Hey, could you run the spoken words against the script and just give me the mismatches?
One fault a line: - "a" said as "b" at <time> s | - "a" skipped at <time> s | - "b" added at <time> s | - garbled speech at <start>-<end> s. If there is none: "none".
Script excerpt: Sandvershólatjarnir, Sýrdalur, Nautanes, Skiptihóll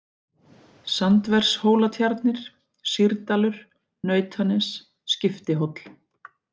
none